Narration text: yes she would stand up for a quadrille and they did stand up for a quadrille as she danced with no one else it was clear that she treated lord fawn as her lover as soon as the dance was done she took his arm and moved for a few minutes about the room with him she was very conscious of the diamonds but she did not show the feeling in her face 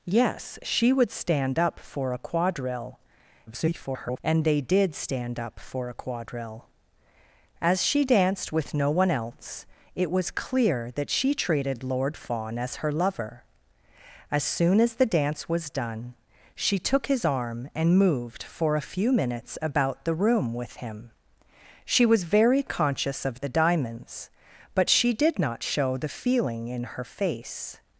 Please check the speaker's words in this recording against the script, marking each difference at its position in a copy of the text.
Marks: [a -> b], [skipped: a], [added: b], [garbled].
yes she would stand up for a quadrille [garbled] and they did stand up for a quadrille as she danced with no one else it was clear that she treated lord fawn as her lover as soon as the dance was done she took his arm and moved for a few minutes about the room with him she was very conscious of the diamonds but she did not show the feeling in her face